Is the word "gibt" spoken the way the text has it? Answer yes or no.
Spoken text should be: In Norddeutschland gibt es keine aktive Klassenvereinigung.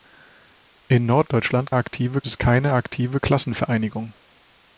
no